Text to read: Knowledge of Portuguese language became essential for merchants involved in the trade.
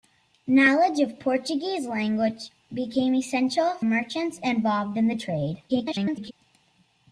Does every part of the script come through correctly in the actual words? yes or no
no